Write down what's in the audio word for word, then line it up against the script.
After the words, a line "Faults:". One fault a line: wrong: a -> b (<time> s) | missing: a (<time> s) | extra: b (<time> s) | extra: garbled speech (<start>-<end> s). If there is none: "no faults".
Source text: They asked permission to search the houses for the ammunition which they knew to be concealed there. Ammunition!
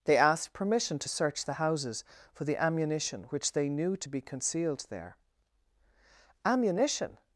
They asked permission to search the houses for the ammunition which they knew to be concealed there. Ammunition!
Faults:
no faults